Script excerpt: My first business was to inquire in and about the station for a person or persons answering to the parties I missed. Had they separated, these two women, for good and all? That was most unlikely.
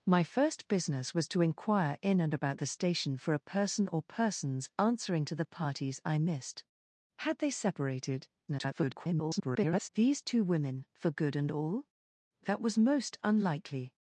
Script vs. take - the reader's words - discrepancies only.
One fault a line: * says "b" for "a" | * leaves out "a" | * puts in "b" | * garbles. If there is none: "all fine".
* garbles